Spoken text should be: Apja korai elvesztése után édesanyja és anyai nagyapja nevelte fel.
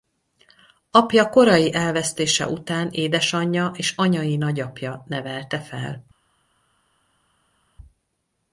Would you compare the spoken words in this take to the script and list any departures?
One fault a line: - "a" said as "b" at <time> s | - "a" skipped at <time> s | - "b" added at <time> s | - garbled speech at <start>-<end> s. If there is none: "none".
none